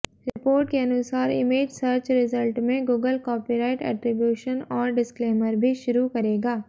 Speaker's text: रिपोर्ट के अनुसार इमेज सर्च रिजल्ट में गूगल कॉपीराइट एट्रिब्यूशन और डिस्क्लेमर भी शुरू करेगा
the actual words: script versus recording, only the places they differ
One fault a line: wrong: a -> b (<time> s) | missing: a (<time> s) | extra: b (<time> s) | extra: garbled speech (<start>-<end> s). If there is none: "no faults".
no faults